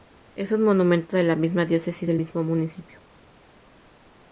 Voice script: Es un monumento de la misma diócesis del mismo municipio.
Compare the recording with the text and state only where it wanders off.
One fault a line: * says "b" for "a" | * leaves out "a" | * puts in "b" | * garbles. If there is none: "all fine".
all fine